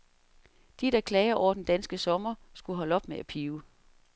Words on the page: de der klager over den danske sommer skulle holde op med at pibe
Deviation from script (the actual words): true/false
false